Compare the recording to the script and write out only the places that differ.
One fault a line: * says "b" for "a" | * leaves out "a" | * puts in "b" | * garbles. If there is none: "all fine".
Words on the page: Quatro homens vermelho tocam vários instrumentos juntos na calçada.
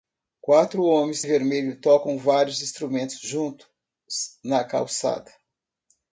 all fine